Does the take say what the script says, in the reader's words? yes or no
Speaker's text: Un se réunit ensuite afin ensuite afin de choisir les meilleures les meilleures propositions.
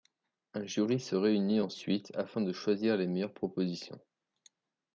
no